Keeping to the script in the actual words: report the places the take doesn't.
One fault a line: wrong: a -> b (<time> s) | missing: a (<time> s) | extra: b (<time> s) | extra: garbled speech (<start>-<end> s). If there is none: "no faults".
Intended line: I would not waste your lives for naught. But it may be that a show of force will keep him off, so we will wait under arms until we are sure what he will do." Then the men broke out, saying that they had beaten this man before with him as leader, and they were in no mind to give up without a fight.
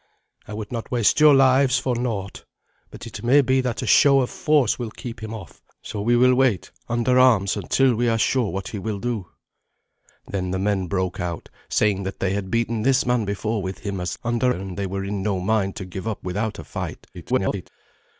wrong: leader -> under (14.2 s)
extra: garbled speech (17.1-17.7 s)